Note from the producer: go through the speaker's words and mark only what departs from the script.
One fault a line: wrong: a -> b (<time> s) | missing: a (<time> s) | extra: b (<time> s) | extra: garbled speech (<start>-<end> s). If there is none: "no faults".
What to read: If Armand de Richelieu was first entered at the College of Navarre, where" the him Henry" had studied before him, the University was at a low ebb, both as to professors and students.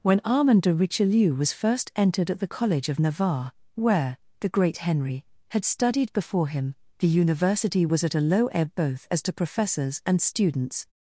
wrong: If -> When (0.0 s)
wrong: him -> great (4.5 s)